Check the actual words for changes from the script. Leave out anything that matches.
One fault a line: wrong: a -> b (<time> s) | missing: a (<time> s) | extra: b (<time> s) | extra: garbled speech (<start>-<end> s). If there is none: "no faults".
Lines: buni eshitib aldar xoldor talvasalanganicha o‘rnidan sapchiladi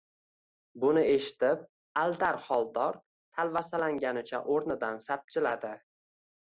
no faults